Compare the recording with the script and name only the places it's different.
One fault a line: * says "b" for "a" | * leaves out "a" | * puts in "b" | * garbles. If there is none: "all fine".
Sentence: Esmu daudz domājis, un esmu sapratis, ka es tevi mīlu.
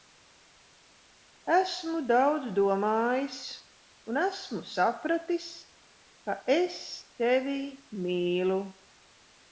all fine